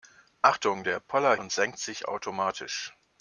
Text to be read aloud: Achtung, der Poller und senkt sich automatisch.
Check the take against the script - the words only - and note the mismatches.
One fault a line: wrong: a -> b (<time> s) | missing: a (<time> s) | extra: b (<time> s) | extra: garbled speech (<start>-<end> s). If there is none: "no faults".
no faults